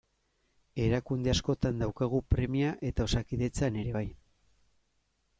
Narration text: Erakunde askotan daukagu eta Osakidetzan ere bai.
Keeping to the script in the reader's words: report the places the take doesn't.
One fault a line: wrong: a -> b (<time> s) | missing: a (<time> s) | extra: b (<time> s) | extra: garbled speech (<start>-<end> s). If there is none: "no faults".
extra: premia (2.3 s)